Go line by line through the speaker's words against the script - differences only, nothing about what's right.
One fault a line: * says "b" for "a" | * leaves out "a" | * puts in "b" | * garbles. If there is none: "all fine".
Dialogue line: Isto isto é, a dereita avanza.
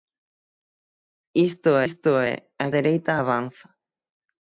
all fine